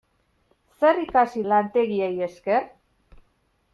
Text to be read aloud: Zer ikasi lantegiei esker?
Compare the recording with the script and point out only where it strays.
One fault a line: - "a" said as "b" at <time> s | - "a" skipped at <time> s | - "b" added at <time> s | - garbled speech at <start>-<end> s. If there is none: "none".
none